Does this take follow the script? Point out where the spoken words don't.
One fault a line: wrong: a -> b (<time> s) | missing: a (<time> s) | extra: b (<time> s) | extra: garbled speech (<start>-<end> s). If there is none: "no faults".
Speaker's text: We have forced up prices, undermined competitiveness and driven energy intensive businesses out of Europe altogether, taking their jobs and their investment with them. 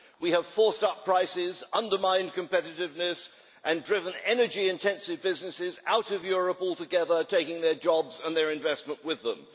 no faults